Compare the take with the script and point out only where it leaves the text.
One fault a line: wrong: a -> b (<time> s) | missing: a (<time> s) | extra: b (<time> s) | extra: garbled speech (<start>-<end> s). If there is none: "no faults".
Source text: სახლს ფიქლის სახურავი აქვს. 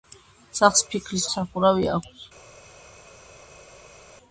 no faults